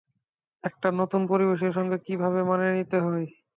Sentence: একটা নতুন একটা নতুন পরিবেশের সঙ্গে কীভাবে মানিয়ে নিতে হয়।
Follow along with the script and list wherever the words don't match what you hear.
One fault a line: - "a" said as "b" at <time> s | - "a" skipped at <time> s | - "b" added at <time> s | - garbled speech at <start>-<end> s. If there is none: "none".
- "একটা নতুন" skipped at 1.2 s